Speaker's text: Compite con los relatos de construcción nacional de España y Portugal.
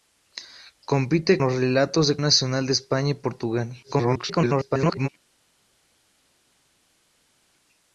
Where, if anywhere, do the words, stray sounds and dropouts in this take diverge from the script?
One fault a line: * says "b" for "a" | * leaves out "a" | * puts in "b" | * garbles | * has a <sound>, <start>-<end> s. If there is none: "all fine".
* leaves out "con"
* leaves out "construcción"
* garbles